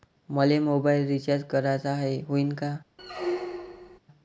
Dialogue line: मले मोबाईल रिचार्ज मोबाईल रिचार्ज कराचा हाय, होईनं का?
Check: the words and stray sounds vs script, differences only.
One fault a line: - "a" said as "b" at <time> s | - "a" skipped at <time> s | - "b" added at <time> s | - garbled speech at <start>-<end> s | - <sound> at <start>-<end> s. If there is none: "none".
- "मोबाईल रिचार्ज" skipped at 1.4 s
- squeak at 3.0-4.0 s